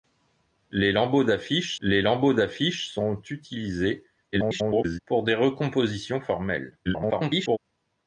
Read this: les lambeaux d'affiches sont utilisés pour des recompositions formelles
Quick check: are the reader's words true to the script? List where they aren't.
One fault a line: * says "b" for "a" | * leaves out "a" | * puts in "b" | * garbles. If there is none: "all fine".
* puts in "les lambeaux d'affiches"
* garbles
* garbles